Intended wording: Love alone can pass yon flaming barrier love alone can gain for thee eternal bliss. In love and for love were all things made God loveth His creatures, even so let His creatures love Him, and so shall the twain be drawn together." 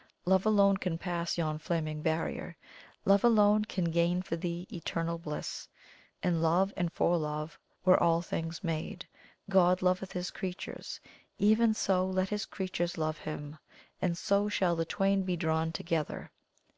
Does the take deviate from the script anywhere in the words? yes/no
no